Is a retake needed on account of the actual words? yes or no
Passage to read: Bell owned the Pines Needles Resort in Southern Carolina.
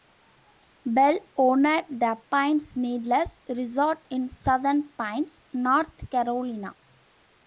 yes